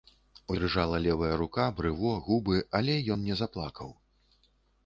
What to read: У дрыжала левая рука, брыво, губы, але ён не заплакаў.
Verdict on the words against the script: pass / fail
pass